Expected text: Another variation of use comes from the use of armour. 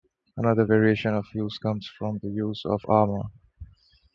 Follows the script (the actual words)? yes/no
yes